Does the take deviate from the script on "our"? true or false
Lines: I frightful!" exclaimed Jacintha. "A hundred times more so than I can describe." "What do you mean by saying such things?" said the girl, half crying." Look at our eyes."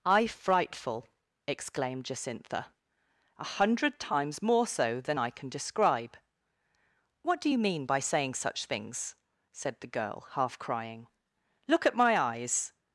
true